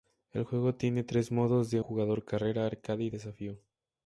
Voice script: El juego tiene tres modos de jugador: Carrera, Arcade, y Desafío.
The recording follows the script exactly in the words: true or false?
true